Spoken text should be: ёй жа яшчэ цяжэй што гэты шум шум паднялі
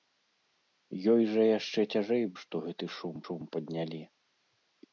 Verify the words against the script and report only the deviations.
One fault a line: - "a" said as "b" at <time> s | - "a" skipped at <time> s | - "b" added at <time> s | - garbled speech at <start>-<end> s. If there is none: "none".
none